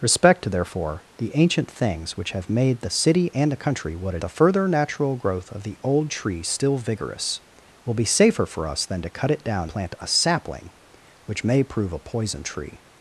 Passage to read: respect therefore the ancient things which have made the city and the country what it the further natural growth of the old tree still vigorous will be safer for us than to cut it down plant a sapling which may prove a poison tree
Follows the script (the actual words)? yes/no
yes